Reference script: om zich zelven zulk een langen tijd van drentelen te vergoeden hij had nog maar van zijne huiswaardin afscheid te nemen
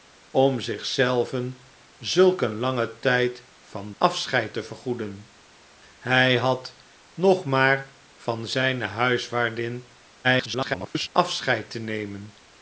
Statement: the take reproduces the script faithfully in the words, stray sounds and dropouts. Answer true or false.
false